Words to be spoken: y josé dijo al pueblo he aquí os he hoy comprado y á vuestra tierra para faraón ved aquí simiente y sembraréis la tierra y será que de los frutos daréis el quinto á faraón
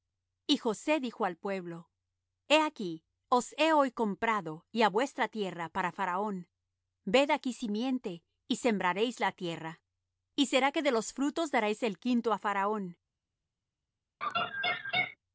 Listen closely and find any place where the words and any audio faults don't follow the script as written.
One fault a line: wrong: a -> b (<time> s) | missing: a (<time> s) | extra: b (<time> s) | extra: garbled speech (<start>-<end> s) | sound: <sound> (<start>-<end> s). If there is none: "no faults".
sound: laugh (14.2-15.2 s)